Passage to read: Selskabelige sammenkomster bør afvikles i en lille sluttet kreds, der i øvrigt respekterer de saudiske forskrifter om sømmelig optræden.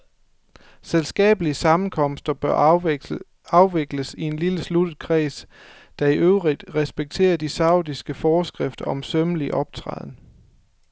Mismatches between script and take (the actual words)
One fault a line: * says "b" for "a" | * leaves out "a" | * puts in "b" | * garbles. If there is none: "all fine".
all fine